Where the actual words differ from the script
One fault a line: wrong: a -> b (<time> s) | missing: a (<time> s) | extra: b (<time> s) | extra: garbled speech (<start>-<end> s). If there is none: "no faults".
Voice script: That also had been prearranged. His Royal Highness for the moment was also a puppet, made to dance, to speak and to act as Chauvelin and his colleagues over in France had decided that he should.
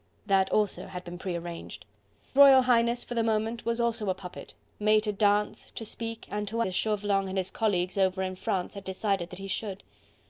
missing: His (1.9 s)
missing: act (6.6 s)